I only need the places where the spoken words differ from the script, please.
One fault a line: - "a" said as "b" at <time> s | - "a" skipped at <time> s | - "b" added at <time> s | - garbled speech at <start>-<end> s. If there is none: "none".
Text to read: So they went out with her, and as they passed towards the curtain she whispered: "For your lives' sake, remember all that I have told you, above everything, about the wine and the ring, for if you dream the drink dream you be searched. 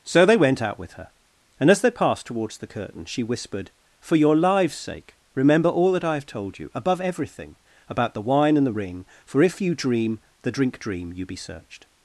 none